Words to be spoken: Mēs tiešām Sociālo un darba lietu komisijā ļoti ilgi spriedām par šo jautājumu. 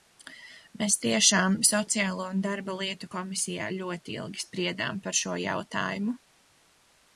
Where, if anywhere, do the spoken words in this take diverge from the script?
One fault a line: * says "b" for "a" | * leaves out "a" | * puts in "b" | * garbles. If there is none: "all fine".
all fine